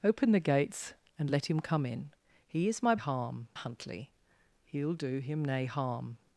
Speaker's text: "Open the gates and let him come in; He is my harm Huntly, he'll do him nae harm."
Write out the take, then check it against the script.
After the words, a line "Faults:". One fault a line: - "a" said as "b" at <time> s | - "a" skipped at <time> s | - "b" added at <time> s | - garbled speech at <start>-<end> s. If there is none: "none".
"Open the gates and let him come in; He is my harm Huntly, he'll do him nae harm."
Faults:
none